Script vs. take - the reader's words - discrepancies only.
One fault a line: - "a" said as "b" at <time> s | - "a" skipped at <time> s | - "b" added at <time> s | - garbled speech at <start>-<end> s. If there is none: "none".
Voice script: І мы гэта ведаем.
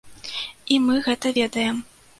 none